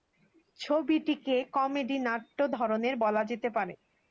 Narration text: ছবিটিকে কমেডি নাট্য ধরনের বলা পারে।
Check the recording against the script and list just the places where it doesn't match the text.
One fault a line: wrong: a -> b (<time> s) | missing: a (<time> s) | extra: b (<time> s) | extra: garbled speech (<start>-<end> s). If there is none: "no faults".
extra: যেতে (3.3 s)